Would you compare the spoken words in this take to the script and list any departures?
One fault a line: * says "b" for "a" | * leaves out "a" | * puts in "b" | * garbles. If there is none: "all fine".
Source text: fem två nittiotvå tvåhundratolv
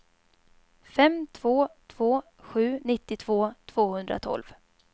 * puts in "två sju"